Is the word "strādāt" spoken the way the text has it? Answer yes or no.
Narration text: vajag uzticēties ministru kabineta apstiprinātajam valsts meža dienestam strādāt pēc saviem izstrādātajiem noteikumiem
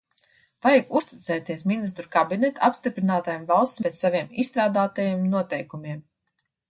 no